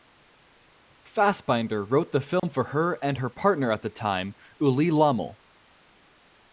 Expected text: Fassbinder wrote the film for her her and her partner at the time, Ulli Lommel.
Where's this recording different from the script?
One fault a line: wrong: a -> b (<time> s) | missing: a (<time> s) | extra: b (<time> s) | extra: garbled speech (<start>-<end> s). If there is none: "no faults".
missing: her (3.0 s)